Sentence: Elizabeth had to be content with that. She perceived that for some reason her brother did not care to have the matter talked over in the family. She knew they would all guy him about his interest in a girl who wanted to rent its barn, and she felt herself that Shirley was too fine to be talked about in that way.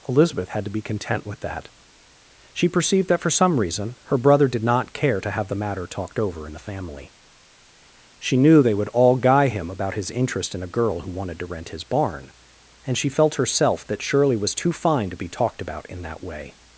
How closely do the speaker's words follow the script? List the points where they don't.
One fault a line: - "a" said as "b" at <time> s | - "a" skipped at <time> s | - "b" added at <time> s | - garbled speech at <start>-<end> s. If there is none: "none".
- "its" said as "his" at 11.7 s